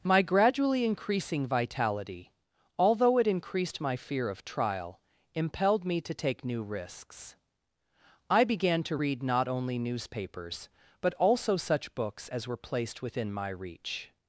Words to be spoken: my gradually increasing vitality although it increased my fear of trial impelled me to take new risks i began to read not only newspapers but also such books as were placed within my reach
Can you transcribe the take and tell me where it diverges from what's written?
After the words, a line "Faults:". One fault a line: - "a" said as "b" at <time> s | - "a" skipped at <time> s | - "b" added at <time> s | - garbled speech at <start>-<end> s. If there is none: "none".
my gradually increasing vitality although it increased my fear of trial impelled me to take new risks i began to read not only newspapers but also such books as were placed within my reach
Faults:
none